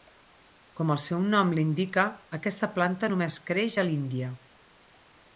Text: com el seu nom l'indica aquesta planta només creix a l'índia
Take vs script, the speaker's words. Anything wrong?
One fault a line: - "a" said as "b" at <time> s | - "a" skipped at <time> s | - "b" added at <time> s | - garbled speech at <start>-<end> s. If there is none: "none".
none